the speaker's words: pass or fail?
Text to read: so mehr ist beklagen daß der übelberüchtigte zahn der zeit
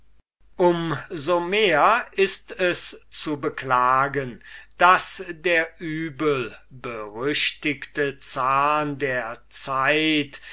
fail